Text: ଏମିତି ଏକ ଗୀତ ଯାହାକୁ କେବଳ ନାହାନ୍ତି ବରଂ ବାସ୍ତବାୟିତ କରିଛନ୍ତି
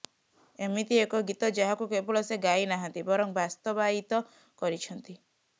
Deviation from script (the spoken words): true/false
true